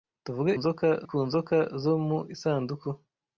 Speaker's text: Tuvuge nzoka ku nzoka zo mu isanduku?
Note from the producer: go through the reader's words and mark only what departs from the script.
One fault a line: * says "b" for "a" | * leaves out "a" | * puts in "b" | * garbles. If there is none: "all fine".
all fine